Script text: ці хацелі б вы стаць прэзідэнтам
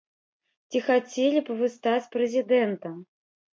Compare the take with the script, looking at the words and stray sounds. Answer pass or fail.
pass